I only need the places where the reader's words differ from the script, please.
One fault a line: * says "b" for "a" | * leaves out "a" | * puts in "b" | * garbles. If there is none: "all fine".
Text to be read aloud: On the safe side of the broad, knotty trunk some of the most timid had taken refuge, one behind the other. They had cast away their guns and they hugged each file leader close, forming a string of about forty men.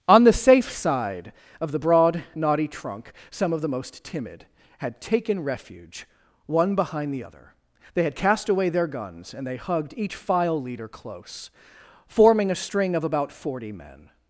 all fine